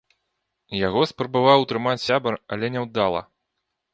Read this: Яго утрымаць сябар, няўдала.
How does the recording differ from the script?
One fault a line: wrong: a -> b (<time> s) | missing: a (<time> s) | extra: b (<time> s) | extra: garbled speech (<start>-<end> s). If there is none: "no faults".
extra: спрабаваў (1.1 s)
extra: але (2.6 s)